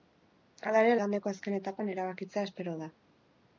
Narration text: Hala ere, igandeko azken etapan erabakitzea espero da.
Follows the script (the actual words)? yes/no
yes